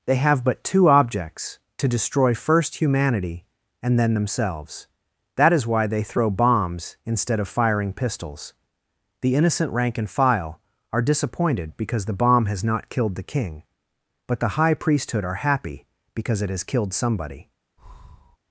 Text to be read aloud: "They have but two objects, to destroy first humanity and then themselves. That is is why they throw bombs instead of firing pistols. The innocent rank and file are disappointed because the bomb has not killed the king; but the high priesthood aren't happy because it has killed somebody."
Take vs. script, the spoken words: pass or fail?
fail